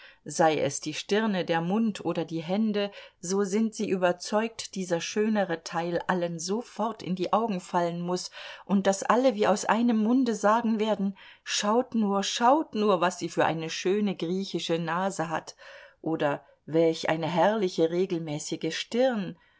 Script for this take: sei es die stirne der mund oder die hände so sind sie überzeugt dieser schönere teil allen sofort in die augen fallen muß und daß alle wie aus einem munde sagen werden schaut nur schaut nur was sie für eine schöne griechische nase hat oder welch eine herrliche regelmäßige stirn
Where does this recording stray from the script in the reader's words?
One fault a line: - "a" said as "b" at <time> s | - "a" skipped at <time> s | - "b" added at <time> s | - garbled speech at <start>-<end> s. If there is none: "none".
none